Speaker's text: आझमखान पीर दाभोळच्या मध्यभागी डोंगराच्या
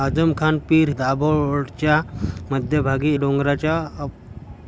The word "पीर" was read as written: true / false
true